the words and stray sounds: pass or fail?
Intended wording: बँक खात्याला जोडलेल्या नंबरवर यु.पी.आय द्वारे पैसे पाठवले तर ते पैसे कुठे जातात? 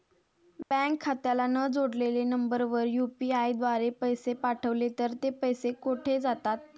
fail